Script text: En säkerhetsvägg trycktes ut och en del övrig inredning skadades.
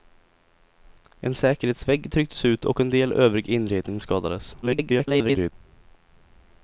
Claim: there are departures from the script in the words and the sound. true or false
true